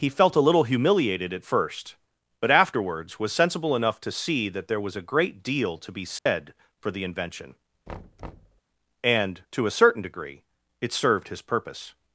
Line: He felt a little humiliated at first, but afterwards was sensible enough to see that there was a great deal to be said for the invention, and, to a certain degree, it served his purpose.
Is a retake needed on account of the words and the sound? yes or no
yes